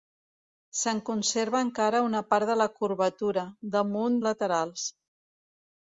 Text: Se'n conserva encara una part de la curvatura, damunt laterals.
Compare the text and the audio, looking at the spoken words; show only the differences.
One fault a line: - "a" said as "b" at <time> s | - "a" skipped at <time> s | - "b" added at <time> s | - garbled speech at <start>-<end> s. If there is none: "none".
none